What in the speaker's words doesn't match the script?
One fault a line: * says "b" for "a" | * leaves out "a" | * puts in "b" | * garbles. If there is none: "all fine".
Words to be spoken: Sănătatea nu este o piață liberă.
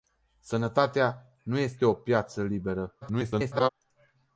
* garbles